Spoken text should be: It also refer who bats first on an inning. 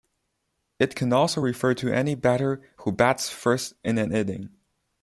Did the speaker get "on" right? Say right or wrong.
wrong